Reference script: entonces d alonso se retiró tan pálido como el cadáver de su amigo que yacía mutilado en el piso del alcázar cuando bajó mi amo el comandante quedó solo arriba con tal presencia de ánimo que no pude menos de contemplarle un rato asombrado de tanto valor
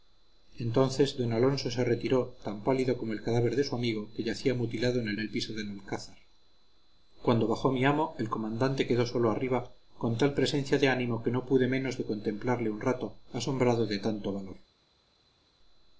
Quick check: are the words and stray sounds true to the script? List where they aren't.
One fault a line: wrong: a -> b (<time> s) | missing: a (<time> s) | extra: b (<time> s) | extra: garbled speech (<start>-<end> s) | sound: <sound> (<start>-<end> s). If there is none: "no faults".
extra: el (5.2 s)